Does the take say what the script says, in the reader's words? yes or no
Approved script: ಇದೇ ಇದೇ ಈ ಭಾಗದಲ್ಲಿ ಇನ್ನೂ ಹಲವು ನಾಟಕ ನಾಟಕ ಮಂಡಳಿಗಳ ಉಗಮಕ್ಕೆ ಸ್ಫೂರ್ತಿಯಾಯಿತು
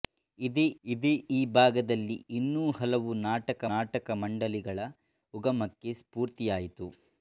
yes